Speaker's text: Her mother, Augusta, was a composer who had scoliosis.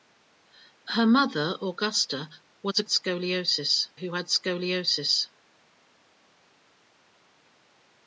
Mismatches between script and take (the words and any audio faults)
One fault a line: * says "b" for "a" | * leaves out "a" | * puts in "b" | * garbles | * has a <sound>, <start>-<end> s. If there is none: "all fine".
* says "scoliosis" for "composer"